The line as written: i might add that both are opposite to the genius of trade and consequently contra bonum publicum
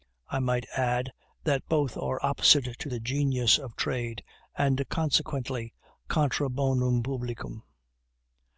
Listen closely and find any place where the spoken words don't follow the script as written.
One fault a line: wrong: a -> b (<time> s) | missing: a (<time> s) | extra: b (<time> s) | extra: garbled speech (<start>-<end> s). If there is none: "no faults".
no faults